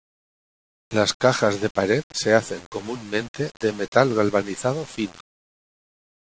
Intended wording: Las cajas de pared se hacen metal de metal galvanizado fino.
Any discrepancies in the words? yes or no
yes